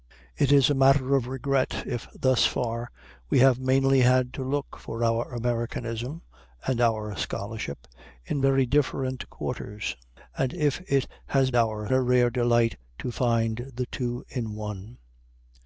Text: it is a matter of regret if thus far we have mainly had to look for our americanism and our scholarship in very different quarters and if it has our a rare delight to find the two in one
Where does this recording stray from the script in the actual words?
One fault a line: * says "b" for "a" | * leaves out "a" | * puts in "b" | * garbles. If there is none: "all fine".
all fine